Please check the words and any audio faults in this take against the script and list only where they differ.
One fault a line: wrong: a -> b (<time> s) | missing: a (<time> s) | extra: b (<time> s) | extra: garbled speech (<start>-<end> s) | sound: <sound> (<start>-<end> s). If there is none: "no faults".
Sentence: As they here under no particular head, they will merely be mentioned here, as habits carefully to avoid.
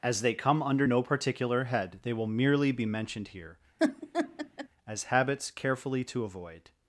wrong: here -> come (0.3 s)
sound: laugh (3.8-4.7 s)